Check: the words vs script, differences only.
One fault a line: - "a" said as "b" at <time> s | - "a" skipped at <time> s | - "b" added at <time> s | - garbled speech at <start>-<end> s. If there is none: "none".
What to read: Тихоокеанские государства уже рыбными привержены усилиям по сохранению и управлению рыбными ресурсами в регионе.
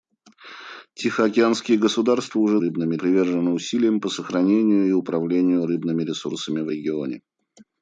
none